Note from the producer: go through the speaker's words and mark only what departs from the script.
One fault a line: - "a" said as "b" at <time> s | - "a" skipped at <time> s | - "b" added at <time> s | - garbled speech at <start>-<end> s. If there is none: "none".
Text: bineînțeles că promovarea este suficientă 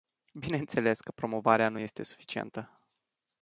- "nu" added at 1.7 s